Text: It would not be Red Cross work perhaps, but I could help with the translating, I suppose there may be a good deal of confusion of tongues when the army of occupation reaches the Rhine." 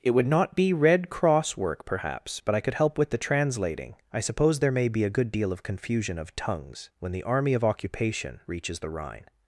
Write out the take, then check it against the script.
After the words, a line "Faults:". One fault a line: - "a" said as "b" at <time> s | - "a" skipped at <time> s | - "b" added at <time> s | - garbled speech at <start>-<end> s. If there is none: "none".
It would not be Red Cross work perhaps, but I could help with the translating, I suppose there may be a good deal of confusion of tongues when the army of occupation reaches the Rhine."
Faults:
none